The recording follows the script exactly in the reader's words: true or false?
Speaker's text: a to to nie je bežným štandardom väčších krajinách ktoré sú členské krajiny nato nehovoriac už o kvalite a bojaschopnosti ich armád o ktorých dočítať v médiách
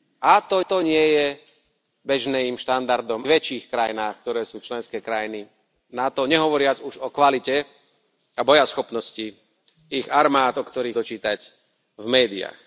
true